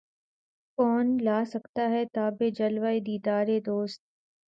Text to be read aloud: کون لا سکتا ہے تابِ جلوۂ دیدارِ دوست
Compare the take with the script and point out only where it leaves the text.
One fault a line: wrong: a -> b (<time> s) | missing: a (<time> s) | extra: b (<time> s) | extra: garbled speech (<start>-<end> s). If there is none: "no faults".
no faults